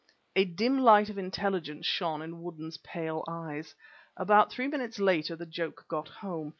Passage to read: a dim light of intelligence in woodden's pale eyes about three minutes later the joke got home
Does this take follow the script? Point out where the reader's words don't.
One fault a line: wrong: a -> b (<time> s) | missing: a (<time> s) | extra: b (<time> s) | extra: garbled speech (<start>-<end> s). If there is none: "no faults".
extra: shone (1.9 s)